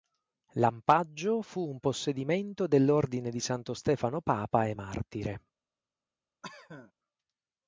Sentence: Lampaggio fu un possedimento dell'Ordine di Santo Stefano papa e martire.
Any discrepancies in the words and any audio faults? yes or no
yes